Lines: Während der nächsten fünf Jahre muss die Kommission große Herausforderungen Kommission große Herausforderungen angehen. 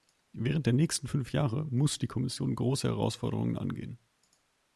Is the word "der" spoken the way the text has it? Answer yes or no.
yes